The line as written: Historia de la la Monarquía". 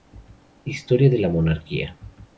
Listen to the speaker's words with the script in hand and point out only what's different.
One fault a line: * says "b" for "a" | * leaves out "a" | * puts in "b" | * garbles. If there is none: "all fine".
* leaves out "la"